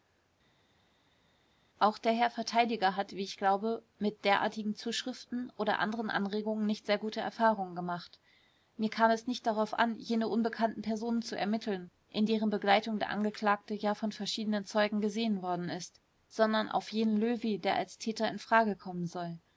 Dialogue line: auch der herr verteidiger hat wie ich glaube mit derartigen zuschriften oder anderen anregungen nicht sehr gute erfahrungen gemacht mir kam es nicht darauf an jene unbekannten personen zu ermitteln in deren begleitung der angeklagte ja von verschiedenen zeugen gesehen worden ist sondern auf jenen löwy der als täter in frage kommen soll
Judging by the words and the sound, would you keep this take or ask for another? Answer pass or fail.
pass